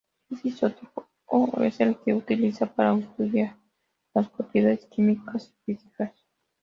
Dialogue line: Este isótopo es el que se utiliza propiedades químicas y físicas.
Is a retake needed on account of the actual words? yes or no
yes